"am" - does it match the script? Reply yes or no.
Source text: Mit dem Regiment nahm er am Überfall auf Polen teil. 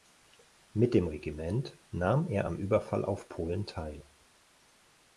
yes